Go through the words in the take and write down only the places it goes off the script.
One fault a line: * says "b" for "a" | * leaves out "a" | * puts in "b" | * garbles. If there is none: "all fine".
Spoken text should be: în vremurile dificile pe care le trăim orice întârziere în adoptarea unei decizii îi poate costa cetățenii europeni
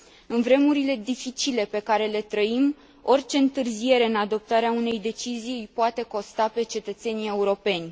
* puts in "pe"